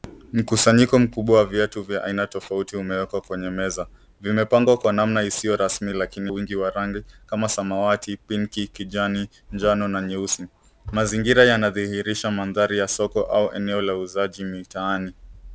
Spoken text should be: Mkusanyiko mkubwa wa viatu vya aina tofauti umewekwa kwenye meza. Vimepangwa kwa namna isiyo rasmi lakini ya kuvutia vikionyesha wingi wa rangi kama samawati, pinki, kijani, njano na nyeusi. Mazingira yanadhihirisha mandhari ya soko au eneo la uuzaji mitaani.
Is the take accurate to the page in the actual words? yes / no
no